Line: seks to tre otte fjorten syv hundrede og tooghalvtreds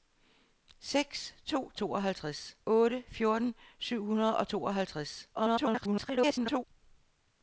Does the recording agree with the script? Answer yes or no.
no